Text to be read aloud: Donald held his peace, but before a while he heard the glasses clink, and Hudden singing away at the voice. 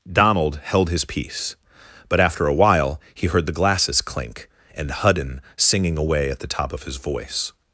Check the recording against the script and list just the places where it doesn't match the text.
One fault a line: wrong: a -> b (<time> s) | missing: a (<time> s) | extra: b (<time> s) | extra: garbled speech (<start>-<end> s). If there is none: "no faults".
wrong: before -> after (2.2 s)
extra: top of his (6.5 s)